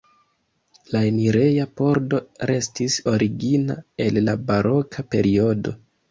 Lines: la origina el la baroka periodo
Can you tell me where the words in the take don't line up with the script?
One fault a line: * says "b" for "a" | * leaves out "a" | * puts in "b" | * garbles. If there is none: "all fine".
* puts in "enireja pordo restis"